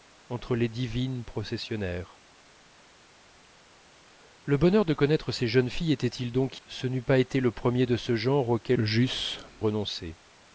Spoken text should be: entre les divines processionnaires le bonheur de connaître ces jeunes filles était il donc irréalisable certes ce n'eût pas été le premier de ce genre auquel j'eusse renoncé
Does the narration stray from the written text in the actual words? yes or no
yes